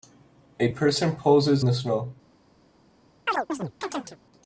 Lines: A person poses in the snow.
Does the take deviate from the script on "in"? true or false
true